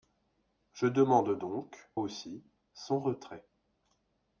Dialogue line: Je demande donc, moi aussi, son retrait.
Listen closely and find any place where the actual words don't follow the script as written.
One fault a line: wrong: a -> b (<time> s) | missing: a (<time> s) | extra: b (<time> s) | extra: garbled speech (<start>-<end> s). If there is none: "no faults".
missing: moi (1.9 s)